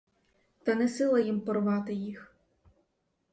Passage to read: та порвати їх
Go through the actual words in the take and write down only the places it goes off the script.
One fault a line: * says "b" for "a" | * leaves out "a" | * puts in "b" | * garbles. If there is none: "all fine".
* puts in "не сила їм"